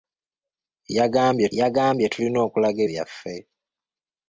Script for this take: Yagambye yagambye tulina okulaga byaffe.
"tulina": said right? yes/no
yes